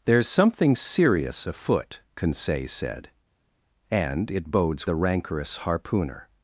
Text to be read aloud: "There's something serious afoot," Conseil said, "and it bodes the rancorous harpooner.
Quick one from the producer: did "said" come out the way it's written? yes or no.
yes